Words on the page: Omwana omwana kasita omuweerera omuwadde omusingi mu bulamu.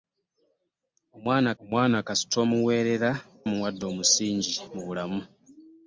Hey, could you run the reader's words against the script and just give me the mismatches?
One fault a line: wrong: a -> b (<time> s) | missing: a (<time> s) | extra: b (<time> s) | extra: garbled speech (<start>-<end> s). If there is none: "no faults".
no faults